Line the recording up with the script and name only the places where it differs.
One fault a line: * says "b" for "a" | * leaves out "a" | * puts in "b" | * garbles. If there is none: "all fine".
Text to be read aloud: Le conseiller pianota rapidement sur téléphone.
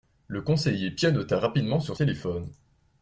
all fine